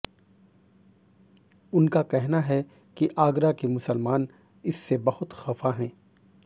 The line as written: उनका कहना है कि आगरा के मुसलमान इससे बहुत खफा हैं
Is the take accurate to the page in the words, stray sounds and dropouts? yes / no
yes